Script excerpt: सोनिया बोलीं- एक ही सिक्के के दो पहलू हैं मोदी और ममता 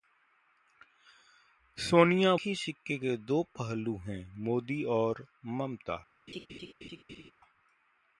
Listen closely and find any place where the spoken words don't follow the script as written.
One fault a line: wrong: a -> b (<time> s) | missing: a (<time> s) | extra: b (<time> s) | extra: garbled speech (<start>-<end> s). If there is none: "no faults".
missing: बोलीं एक (2.4 s)